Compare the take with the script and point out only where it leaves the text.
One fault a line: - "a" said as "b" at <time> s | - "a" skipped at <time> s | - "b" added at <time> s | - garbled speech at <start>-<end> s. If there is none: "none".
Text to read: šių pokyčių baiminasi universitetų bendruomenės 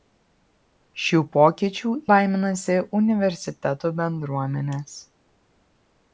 none